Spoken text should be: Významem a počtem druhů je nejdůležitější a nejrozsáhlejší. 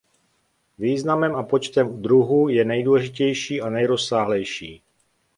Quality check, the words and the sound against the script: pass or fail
pass